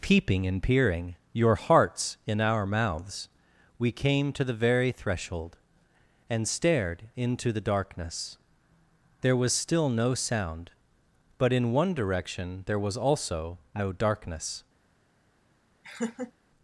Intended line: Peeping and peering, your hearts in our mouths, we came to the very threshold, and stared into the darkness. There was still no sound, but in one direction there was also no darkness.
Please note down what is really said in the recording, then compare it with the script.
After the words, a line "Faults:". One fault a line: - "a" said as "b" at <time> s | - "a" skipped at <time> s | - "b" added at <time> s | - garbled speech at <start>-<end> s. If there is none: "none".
Peeping and peering, your hearts in our mouths, we came to the very threshold, and stared into the darkness. There was still no sound, but in one direction there was also no darkness.
Faults:
none